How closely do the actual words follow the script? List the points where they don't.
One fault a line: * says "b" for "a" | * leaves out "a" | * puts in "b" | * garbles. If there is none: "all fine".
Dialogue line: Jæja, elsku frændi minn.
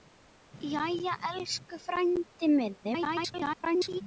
* garbles